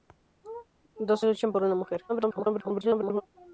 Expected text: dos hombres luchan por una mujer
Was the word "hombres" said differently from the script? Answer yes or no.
yes